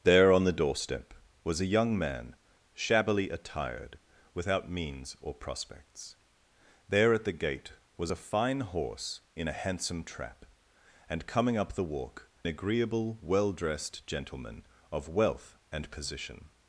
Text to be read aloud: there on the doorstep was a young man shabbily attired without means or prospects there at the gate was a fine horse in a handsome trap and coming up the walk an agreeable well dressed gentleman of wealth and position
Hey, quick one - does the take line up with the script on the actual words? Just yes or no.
no